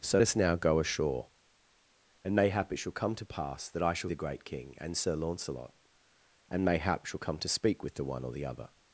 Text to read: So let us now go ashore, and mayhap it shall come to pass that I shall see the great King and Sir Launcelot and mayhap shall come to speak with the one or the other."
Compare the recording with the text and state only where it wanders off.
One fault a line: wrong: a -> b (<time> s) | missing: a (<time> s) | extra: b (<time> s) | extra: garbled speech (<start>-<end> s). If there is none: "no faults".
missing: let (0.2 s)
missing: see (4.1 s)